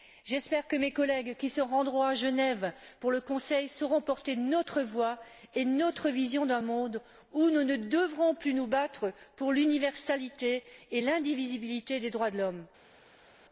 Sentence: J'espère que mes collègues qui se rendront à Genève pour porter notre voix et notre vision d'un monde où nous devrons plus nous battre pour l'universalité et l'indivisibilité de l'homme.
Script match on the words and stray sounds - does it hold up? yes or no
no